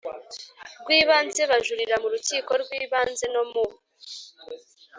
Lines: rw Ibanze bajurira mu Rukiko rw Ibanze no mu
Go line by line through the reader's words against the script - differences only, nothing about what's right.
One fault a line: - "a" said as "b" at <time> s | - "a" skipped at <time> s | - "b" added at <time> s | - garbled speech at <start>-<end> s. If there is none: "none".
none